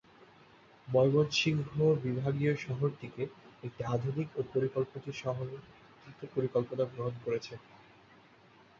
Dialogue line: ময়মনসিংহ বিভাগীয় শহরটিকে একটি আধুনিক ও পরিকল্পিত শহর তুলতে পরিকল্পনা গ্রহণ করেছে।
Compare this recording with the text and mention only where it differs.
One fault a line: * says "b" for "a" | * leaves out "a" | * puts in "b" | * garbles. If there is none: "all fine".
all fine